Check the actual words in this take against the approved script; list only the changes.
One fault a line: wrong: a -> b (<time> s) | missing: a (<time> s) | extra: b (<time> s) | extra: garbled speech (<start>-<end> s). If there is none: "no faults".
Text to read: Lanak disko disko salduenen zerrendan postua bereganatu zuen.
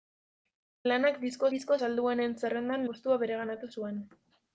no faults